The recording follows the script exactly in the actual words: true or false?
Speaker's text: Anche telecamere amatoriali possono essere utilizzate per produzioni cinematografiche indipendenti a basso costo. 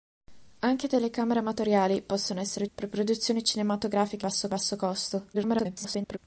false